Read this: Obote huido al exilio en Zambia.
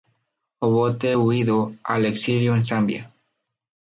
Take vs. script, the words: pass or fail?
pass